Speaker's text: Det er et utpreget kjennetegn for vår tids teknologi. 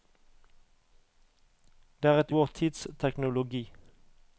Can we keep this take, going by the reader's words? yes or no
no